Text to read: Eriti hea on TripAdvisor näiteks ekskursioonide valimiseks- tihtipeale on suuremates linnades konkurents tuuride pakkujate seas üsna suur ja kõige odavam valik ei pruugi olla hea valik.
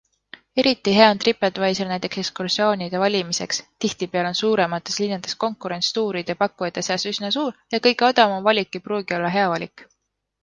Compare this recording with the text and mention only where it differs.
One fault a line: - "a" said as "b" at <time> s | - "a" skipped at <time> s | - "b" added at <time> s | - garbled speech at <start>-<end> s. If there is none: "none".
none